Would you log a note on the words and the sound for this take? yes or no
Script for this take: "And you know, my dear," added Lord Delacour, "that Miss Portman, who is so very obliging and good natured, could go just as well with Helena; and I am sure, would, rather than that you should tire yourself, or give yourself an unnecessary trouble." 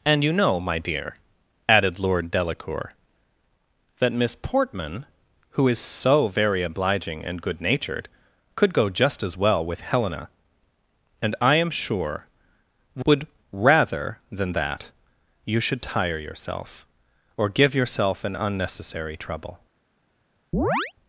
yes